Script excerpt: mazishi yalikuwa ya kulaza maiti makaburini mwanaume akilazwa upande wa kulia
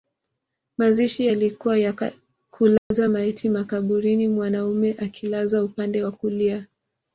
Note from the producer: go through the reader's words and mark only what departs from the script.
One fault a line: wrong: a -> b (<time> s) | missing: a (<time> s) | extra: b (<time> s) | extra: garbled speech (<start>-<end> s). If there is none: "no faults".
no faults